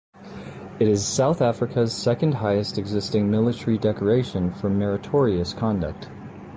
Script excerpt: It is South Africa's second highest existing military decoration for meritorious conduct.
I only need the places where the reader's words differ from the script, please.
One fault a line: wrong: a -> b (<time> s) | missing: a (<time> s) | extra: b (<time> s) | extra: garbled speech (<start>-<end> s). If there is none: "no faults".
no faults